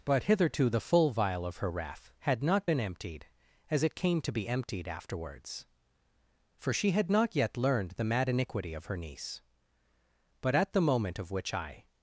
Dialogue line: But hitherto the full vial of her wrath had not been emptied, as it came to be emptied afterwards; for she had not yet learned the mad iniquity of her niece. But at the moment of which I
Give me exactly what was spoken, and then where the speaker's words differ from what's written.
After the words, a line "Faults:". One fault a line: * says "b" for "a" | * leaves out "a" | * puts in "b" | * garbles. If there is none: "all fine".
But hitherto the full vial of her wrath had not been emptied, as it came to be emptied afterwards; for she had not yet learned the mad iniquity of her niece. But at the moment of which I
Faults:
all fine